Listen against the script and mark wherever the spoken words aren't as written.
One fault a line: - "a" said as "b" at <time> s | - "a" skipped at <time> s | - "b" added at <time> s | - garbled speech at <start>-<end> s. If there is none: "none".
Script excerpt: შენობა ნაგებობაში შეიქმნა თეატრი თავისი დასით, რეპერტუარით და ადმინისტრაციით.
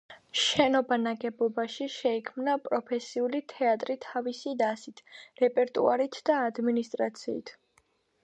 - "პროფესიული" added at 2.7 s